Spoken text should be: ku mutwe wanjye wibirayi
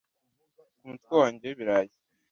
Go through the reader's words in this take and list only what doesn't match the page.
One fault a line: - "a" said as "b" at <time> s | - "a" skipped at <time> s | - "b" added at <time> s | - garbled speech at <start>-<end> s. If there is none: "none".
none